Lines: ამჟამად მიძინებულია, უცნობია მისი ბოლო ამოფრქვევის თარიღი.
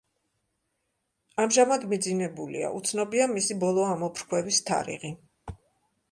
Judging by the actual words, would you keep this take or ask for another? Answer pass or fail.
pass